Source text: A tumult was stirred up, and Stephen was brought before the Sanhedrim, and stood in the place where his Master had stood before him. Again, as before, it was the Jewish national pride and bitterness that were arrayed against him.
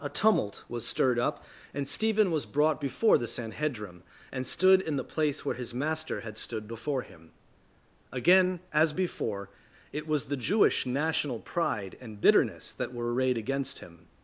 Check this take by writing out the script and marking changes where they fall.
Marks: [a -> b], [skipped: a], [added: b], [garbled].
A tumult was stirred up, and Stephen was brought before the Sanhedrim, and stood in the place where his Master had stood before him. Again, as before, it was the Jewish national pride and bitterness that were arrayed against him.